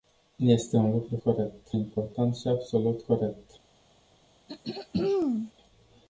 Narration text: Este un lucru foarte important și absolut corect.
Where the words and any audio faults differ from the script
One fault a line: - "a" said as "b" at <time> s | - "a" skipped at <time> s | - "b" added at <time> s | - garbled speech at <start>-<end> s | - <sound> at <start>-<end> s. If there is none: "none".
- "foarte" said as "corect" at 1.2 s
- throat clearing at 4.5-5.5 s